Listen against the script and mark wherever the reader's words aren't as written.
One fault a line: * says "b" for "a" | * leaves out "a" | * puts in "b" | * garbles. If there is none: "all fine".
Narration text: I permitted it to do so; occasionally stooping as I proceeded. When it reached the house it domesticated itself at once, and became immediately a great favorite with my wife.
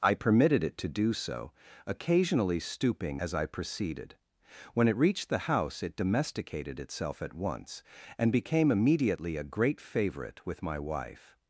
all fine